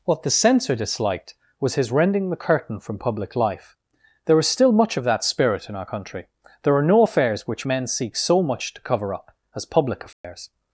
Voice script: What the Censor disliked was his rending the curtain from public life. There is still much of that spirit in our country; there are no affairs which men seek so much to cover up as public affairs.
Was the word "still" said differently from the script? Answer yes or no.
no